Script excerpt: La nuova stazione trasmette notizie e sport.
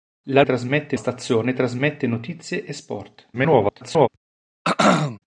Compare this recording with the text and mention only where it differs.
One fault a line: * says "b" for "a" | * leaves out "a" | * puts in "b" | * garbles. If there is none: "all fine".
* says "trasmette" for "nuova"
* garbles